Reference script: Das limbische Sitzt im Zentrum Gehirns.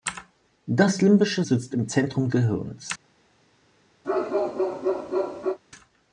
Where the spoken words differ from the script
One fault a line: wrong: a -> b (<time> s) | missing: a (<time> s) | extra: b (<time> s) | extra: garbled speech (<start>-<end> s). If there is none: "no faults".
no faults